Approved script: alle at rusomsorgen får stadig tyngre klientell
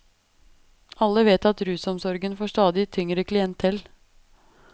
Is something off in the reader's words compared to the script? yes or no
yes